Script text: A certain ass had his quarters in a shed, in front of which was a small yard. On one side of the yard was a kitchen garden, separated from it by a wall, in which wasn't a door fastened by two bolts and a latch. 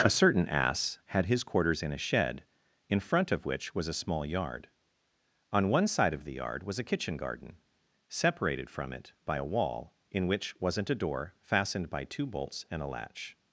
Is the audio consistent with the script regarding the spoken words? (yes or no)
yes